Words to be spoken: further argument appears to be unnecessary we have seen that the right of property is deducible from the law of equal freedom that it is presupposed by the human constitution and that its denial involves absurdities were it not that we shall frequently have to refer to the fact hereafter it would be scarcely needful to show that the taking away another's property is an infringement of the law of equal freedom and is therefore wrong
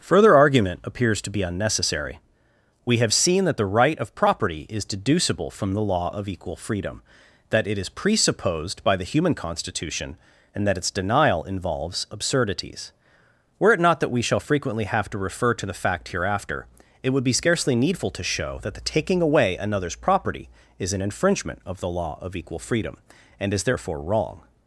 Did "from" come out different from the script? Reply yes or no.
no